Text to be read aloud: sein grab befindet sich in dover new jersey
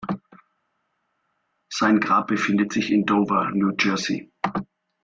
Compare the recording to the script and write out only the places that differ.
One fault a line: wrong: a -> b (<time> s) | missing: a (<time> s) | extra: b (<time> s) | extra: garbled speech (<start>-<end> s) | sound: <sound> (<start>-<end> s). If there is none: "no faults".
no faults